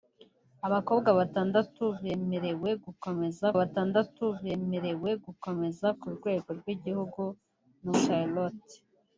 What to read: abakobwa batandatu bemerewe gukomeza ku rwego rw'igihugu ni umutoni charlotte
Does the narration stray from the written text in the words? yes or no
yes